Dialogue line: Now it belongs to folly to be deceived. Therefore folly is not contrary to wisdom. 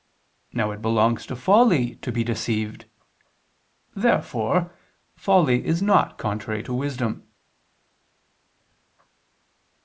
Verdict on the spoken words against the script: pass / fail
pass